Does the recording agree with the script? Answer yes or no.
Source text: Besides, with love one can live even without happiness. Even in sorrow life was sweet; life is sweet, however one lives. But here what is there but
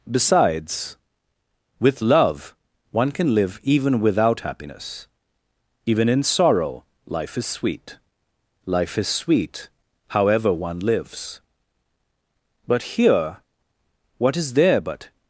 no